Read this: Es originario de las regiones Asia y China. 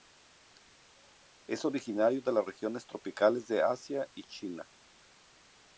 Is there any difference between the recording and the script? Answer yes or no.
yes